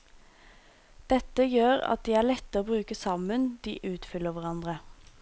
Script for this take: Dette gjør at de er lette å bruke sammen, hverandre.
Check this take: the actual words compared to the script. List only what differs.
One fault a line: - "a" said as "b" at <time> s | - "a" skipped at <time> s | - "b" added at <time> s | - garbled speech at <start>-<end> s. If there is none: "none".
- "de utfyller" added at 3.7 s